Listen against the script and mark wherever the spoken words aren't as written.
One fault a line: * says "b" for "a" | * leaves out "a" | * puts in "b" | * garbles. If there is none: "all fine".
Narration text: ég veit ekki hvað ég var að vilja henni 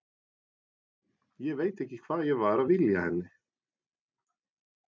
all fine